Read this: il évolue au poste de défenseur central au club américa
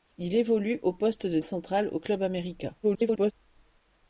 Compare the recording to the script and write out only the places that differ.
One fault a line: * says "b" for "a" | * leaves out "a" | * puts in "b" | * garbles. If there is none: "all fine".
* leaves out "défenseur"
* garbles